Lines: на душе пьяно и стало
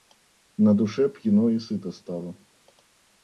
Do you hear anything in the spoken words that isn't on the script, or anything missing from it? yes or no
yes